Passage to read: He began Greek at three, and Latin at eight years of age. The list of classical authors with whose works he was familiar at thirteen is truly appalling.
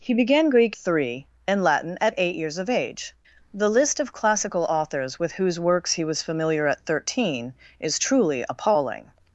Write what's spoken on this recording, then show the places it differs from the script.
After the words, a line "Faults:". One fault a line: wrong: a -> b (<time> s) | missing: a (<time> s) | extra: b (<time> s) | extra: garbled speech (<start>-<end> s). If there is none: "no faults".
He began Greek three, and Latin at eight years of age. The list of classical authors with whose works he was familiar at thirteen is truly appalling.
Faults:
missing: at (0.8 s)